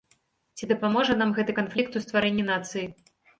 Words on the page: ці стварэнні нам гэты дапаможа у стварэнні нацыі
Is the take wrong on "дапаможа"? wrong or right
wrong